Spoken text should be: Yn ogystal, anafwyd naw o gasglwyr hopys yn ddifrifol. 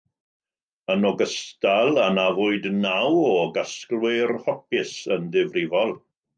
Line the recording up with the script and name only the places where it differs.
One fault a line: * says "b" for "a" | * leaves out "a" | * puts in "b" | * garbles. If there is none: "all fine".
all fine